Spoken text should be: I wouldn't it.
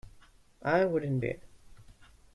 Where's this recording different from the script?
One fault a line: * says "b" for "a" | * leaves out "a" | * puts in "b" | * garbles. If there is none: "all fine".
all fine